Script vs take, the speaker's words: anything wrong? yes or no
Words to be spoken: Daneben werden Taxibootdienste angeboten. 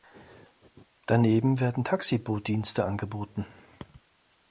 no